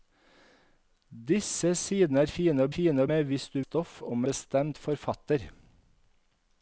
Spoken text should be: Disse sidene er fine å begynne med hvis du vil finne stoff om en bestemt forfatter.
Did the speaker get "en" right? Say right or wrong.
wrong